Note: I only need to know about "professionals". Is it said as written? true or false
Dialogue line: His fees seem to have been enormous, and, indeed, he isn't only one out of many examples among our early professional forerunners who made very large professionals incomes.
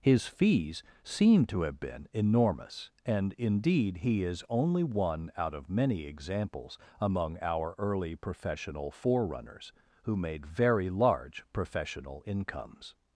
false